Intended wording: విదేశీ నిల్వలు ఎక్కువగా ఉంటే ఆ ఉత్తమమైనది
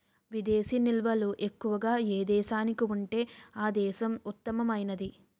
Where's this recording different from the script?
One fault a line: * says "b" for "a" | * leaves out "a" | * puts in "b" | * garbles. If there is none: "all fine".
* puts in "ఏ దేశానికి"
* puts in "దేశం"